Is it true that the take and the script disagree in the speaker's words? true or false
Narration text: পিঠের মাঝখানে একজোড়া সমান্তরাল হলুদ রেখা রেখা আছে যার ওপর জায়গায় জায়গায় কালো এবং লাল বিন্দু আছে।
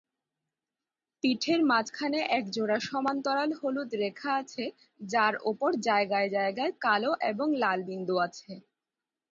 true